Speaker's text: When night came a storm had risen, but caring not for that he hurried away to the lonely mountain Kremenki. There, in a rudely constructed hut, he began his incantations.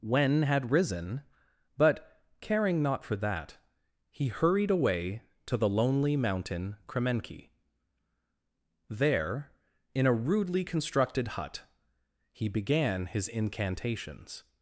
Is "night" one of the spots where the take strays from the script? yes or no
yes